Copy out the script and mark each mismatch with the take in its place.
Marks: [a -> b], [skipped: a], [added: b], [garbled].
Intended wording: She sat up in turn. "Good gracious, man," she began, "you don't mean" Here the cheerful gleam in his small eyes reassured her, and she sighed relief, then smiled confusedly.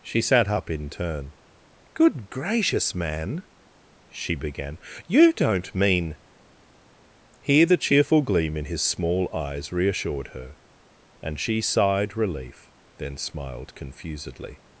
She sat up in turn. "Good gracious, man," she began, "you don't mean" Here the cheerful gleam in his small eyes reassured her, and she sighed relief, then smiled confusedly.